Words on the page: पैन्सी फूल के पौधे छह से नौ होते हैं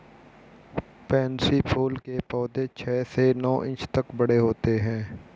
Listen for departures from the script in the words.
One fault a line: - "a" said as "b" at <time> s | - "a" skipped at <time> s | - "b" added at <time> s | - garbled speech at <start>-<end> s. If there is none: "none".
- "इंच तक बड़े" added at 3.6 s